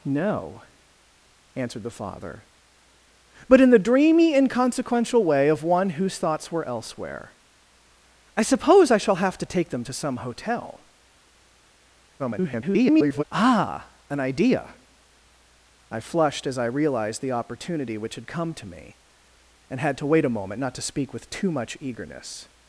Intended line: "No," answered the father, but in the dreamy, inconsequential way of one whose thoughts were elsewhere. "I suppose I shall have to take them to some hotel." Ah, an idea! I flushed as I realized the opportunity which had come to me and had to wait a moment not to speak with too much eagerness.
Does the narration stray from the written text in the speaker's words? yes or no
yes